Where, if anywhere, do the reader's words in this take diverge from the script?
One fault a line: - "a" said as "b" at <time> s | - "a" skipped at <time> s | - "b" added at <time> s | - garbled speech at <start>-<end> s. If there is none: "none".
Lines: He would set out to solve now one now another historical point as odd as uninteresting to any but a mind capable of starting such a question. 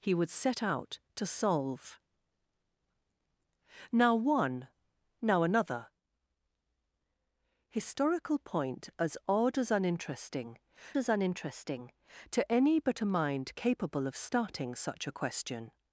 - "as uninteresting" added at 11.0 s